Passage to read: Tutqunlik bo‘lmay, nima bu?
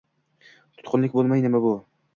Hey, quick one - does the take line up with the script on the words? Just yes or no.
yes